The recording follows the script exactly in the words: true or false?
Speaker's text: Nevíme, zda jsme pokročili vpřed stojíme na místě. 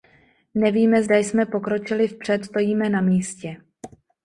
true